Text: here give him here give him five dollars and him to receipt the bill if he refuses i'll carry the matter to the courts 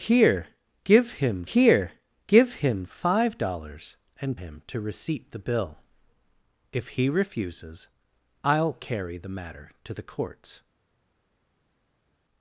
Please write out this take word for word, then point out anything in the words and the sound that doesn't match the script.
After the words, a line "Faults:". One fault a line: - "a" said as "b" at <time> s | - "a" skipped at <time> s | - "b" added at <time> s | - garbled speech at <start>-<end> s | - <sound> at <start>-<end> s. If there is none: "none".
here give him here give him five dollars and him to receipt the bill if he refuses i'll carry the matter to the courts
Faults:
none